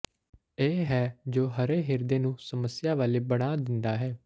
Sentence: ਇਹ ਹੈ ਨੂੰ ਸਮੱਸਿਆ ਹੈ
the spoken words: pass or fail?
fail